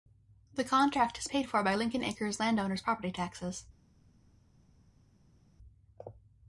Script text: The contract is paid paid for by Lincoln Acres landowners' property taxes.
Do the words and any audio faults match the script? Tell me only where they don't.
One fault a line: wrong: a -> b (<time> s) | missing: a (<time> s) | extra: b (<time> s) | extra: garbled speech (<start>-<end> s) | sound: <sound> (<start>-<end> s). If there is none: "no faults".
missing: paid (1.5 s)